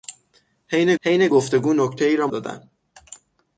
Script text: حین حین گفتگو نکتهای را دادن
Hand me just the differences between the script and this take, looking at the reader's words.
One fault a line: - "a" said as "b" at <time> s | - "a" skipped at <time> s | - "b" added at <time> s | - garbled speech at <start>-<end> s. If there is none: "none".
none